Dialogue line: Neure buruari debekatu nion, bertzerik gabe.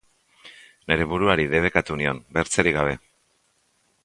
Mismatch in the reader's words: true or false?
false